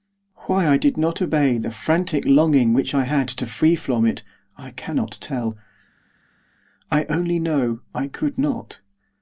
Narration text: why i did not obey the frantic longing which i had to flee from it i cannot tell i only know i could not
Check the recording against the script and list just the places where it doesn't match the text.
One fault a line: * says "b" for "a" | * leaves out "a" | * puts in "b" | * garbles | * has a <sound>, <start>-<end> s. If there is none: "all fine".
all fine